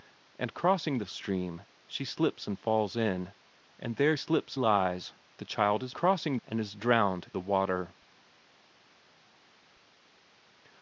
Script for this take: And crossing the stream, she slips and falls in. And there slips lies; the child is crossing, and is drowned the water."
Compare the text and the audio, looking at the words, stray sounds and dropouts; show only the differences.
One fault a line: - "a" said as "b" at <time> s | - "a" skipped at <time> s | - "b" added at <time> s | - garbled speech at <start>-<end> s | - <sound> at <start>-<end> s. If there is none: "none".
none